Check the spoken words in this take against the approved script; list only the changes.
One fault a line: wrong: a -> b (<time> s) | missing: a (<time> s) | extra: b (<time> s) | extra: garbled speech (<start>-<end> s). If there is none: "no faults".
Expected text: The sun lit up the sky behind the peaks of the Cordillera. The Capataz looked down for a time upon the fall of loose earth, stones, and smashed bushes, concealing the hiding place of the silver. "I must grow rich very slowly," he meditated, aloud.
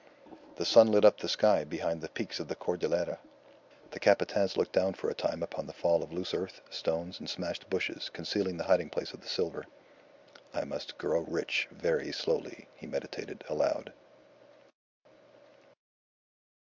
no faults